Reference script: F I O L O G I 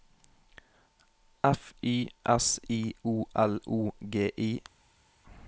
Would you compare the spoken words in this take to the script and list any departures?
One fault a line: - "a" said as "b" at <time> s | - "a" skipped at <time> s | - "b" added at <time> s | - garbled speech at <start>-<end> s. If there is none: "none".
- "Y S" added at 1.8 s